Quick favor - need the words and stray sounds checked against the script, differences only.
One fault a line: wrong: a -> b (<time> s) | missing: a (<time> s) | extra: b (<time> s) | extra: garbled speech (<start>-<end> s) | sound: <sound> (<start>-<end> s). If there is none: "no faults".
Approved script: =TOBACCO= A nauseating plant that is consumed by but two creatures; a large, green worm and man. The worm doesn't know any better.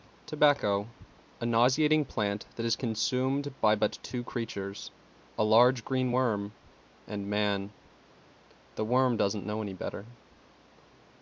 no faults